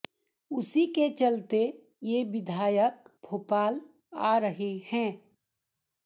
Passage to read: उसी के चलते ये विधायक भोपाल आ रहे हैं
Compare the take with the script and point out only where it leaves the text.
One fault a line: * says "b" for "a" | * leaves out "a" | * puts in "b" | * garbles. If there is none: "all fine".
all fine